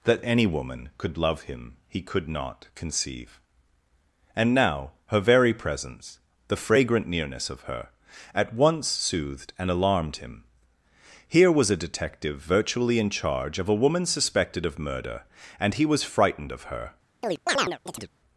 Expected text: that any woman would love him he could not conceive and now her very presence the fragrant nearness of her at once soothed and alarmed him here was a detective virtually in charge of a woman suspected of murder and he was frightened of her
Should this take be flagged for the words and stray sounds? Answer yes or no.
yes